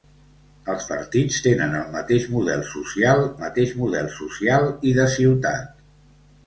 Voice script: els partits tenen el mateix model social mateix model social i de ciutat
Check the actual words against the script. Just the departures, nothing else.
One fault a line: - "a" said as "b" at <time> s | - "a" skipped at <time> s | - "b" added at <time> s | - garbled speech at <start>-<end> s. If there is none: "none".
none